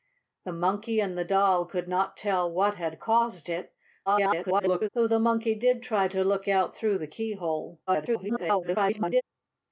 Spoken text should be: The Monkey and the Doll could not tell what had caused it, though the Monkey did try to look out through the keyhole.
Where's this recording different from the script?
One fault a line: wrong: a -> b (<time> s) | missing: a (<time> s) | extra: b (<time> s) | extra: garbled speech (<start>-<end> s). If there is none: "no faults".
extra: garbled speech (4.1-4.9 s)
extra: garbled speech (7.9-9.2 s)